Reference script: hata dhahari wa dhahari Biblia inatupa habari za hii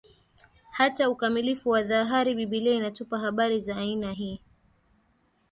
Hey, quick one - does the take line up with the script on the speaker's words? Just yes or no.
no